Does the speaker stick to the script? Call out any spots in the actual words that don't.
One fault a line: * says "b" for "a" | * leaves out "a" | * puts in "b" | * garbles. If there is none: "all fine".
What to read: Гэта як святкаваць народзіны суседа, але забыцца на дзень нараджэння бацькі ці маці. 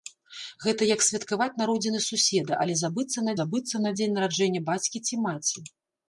* puts in "забыцца на"